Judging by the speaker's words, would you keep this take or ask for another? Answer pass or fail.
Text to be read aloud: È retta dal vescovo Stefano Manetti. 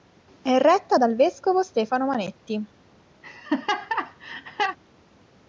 pass